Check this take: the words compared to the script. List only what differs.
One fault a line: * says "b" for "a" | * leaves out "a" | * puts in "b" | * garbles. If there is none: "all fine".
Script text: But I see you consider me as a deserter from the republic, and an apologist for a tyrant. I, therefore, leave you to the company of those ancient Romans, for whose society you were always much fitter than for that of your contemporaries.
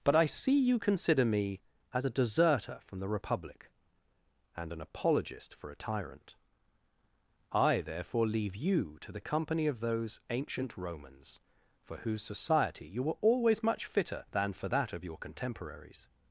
all fine